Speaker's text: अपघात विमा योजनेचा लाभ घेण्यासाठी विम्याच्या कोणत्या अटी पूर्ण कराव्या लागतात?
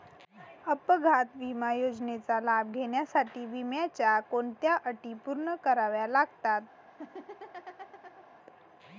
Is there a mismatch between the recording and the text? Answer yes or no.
no